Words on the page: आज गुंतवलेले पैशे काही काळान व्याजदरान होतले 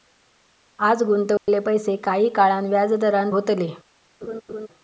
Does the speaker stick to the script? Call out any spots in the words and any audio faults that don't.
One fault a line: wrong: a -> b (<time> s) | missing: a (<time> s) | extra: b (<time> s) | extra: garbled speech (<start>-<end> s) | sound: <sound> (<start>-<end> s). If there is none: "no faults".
sound: dropout (1.4-1.5 s)
sound: laugh (4.2-4.7 s)